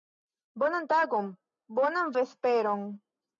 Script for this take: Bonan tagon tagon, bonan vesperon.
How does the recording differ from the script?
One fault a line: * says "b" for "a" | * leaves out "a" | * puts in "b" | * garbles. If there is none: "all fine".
* leaves out "tagon"